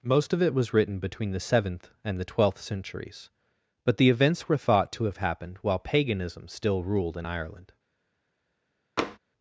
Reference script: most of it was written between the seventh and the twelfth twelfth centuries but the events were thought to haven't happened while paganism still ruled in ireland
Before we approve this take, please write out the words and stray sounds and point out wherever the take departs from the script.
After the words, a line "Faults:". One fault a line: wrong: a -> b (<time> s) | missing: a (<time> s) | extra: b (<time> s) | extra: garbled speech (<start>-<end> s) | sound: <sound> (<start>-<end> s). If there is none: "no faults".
most of it was written between the seventh and the twelfth centuries but the events were thought to have happened while paganism still ruled in ireland
Faults:
missing: twelfth (2.6 s)
wrong: haven't -> have (5.0 s)
sound: tap (9.0-9.2 s)